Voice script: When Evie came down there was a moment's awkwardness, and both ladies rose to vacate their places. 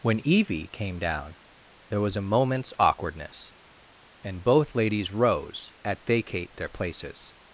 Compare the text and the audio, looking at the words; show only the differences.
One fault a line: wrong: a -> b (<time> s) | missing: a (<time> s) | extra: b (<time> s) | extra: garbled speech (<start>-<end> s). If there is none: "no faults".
wrong: to -> at (5.8 s)